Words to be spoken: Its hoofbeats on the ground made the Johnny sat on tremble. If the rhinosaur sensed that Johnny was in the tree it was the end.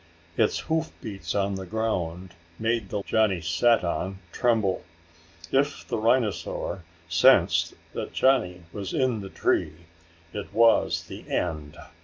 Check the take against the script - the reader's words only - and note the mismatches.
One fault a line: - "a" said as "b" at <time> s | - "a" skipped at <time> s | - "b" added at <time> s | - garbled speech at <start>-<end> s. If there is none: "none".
none